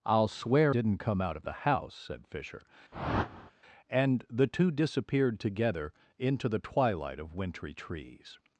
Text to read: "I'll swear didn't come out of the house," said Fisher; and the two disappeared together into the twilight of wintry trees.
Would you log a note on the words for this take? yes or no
no